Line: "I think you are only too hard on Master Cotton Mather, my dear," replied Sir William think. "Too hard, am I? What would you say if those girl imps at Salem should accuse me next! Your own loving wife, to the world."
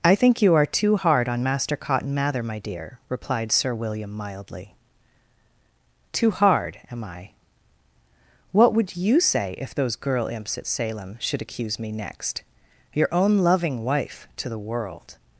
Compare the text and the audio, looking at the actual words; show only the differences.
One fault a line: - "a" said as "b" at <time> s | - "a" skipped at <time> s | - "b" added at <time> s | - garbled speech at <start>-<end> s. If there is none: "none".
- "only" skipped at 0.7 s
- "think" said as "mildly" at 4.1 s